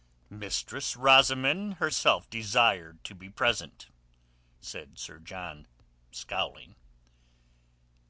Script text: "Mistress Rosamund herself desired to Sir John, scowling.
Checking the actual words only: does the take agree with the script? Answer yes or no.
no